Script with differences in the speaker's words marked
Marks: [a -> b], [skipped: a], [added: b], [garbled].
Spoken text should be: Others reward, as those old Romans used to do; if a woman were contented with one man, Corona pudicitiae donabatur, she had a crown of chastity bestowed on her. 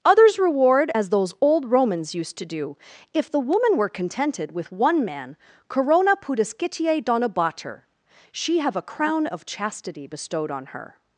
Others reward, as those old Romans used to do; if [a -> the] woman were contented with one man, Corona pudicitiae donabatur, she [had -> have] a crown of chastity bestowed on her.